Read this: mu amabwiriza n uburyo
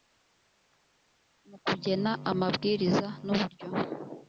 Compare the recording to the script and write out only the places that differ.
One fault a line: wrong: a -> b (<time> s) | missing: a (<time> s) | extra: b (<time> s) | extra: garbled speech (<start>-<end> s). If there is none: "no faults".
extra: kugena (1.6 s)